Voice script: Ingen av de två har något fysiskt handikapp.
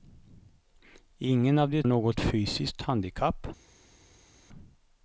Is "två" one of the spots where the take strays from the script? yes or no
yes